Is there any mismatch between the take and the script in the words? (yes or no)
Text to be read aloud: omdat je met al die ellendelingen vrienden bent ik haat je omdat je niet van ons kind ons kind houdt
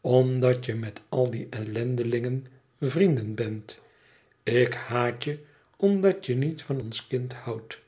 yes